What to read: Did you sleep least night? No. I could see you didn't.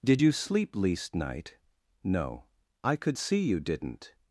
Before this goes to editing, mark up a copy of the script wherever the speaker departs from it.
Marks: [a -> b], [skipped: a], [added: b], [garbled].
Did you sleep least night? No. I could see you didn't.